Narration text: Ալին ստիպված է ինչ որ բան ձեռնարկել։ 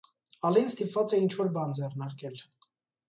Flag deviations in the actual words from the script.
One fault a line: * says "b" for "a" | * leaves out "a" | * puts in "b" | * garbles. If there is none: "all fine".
all fine